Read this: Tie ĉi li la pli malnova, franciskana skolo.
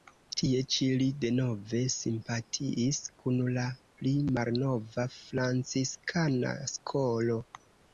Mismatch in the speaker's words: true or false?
true